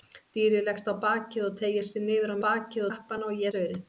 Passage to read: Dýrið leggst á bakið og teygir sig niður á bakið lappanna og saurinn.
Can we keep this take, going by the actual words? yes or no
yes